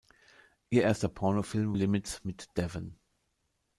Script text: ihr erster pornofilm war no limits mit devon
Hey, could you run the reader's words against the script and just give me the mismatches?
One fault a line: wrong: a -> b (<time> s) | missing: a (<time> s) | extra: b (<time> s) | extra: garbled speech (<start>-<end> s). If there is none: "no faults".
missing: war no (1.8 s)